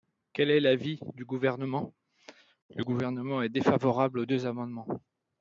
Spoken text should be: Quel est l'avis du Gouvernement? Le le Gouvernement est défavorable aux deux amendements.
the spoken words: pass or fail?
fail